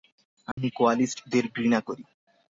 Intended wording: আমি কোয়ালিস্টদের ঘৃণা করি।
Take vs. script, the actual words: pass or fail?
pass